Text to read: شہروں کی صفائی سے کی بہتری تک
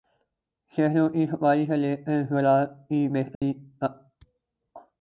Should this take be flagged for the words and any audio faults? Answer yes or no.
yes